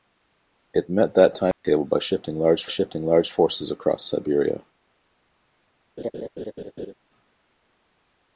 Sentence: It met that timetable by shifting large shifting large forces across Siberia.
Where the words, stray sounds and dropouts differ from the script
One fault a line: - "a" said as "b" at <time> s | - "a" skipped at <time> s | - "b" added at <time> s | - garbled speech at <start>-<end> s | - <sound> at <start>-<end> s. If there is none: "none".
- dropout at 1.5-1.6 s
- laugh at 6.0-6.9 s